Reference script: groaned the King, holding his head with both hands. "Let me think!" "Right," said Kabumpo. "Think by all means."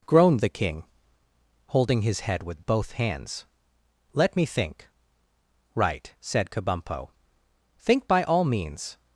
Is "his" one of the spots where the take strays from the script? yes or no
no